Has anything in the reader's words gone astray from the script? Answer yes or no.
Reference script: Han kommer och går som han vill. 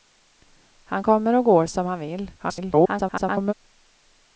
yes